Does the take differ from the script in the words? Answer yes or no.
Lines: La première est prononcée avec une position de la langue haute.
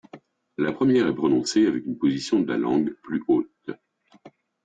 yes